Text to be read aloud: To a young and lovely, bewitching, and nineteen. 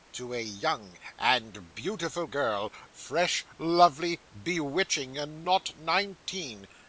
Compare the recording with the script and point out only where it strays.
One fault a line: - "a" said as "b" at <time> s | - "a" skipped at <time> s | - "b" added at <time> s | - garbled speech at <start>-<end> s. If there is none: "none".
- "beautiful girl fresh" added at 1.8 s
- "not" added at 5.4 s